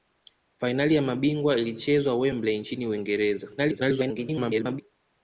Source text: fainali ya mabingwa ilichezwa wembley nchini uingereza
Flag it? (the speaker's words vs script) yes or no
yes